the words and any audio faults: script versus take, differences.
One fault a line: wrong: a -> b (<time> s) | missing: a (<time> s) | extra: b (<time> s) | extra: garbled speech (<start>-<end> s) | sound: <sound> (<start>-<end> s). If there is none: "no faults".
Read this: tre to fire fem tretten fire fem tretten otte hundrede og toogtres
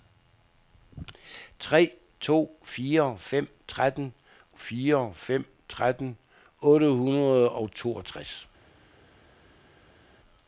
no faults